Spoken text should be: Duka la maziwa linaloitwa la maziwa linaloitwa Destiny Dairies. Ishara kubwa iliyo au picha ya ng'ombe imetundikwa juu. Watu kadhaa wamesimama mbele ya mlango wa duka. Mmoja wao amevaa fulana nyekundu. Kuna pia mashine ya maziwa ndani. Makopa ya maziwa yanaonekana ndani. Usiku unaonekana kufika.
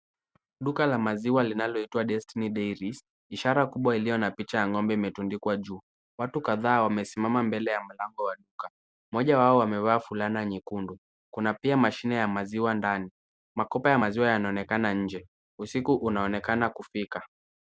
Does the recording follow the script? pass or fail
fail